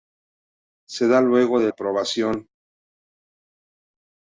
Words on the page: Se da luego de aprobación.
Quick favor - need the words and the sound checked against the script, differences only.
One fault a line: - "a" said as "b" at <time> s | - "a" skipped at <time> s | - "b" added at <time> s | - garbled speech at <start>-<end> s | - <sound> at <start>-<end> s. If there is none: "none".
none